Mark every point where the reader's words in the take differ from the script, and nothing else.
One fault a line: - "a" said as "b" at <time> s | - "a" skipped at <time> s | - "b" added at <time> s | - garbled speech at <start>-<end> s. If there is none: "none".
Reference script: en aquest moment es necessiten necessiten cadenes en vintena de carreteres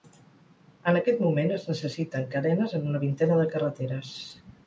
- "necessiten" skipped at 2.2 s
- "una" added at 2.9 s